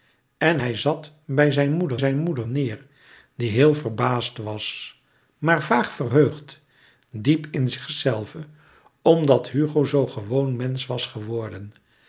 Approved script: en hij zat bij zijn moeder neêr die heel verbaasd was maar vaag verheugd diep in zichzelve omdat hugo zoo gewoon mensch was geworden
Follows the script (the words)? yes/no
no